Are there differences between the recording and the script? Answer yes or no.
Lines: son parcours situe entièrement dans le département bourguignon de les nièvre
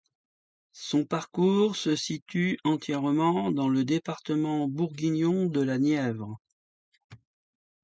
yes